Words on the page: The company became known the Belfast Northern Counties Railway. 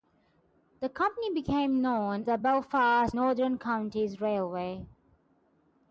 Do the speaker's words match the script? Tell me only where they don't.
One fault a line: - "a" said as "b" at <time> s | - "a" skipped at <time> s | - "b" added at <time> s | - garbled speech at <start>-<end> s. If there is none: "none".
none